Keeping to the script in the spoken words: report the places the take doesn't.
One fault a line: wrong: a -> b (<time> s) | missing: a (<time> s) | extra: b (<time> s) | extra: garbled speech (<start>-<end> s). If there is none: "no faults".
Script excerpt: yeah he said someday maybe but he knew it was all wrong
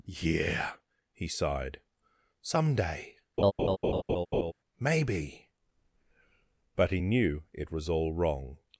wrong: said -> sighed (1.3 s)